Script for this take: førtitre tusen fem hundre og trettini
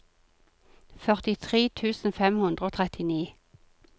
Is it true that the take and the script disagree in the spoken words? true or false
false